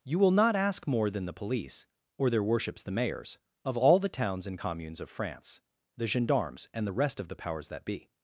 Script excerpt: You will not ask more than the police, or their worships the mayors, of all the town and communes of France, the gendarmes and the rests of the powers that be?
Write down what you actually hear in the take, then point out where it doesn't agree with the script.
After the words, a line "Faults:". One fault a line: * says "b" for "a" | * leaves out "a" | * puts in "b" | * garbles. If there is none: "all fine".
You will not ask more than the police, or their worships the mayors, of all the towns and communes of France, the gendarmes and the rest of the powers that be?
Faults:
* says "towns" for "town"
* says "rest" for "rests"